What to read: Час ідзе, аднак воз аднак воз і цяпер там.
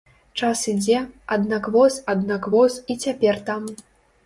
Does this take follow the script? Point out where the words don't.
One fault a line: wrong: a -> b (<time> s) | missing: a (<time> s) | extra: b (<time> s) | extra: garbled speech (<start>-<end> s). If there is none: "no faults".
no faults